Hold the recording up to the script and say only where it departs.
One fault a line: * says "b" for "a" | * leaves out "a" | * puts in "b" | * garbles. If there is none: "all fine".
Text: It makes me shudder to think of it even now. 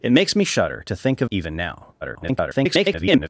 * leaves out "it"
* garbles